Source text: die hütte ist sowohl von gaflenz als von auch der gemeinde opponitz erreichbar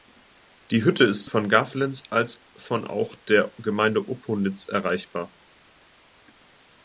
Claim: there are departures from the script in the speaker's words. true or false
true